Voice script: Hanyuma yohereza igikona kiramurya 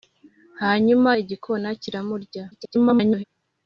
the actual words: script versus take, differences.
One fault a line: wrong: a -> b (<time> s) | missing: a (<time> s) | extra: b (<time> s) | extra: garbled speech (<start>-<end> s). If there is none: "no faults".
missing: yohereza (1.1 s)
extra: garbled speech (2.5-3.2 s)